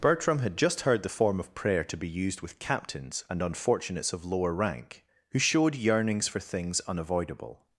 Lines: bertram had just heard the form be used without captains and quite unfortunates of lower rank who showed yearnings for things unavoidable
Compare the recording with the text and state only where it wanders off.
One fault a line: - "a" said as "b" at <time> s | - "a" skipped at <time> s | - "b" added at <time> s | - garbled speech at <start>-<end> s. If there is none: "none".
- "of prayer to" added at 1.4 s
- "without" said as "with" at 2.4 s
- "quite" skipped at 3.4 s